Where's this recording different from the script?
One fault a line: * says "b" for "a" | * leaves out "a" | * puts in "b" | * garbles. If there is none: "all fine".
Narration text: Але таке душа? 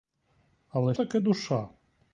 all fine